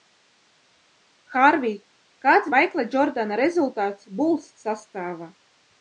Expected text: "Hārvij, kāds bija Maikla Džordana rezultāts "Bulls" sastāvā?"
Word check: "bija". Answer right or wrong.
wrong